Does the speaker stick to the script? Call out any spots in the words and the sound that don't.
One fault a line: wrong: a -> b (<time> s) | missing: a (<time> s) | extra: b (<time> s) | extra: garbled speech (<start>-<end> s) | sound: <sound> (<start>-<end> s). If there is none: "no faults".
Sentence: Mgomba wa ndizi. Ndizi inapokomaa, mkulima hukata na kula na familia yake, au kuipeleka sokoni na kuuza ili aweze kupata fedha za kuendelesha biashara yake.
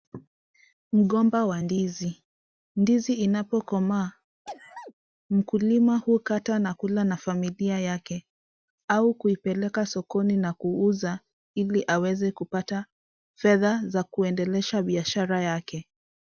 sound: sneeze (4.5-4.9 s)